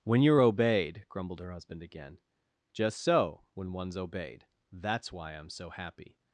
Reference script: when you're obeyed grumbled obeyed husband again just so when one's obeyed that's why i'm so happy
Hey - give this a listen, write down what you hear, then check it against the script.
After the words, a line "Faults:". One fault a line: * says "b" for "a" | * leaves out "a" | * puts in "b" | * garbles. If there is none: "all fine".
when you're obeyed grumbled her husband again just so when one's obeyed that's why i'm so happy
Faults:
* says "her" for "obeyed"